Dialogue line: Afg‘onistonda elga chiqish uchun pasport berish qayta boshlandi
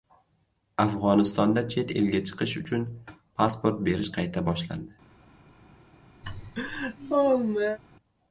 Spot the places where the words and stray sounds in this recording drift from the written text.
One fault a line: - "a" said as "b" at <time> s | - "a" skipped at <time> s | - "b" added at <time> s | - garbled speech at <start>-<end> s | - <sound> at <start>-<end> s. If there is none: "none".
- "chet" added at 1.7 s
- laugh at 6.2-7.8 s